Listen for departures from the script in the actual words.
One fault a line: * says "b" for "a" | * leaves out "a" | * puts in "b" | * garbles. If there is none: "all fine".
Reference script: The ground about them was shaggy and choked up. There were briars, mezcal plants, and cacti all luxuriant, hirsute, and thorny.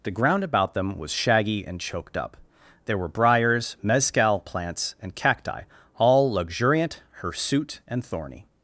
all fine